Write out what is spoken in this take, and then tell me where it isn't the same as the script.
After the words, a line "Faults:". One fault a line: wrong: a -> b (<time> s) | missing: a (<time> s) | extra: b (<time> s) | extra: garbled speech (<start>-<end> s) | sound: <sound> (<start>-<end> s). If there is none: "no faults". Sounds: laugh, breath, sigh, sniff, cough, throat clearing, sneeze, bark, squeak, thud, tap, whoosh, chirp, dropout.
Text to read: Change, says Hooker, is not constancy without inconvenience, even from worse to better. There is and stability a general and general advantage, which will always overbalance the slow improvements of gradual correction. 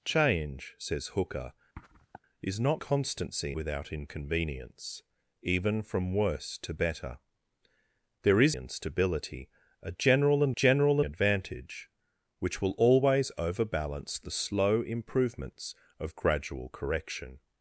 Change, says Hooker, is not constancy without inconvenience, even from worse to better. There is and stability a general and general advantage, which will always overbalance the slow improvements of gradual correction.
Faults:
sound: sniff (1.8-2.2 s)